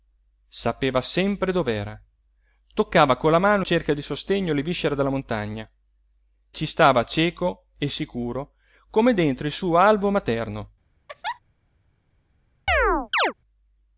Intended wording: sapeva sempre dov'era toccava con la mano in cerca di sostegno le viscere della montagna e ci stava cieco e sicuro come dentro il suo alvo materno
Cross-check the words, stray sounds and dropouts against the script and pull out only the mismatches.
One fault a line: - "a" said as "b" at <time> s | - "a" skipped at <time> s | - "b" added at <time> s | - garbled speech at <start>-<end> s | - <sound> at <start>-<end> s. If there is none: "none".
- "in" skipped at 3.6 s
- "e" skipped at 5.7 s
- laugh at 11.1-11.4 s
- chirp at 12.7-13.3 s